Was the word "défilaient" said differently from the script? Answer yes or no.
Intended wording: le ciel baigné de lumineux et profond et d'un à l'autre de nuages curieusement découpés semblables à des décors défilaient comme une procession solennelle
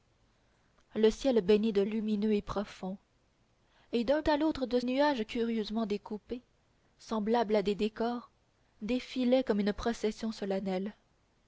no